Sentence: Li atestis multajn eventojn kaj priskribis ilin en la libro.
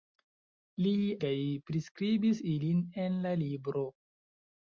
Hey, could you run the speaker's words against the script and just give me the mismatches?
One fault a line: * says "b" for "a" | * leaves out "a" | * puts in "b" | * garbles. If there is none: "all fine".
* leaves out "atestis multajn eventojn"